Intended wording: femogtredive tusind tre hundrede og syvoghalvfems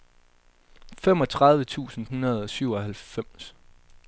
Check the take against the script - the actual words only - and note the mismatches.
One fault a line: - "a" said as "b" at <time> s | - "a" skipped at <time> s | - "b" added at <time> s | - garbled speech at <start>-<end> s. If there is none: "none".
- "tre" skipped at 2.1 s